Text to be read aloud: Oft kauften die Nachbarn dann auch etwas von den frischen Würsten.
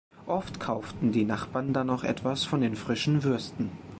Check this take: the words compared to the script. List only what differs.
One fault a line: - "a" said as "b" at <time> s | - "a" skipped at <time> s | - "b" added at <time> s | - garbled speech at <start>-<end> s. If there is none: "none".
none